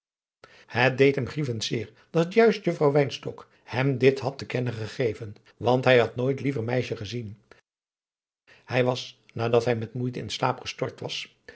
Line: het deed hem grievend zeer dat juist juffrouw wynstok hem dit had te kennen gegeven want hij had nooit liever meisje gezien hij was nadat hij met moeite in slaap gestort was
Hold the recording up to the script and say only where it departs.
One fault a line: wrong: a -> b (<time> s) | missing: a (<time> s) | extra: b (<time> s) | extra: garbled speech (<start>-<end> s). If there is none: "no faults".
no faults